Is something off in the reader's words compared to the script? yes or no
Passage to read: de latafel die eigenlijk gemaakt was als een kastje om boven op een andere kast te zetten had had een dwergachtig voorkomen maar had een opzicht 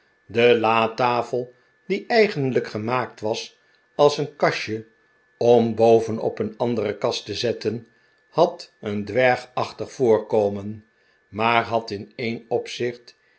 yes